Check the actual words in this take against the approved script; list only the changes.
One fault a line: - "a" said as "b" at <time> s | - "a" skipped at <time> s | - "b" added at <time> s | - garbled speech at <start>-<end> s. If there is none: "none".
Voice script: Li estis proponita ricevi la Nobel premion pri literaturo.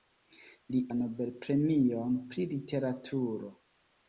- "estis proponita ricevi" skipped at 0.8 s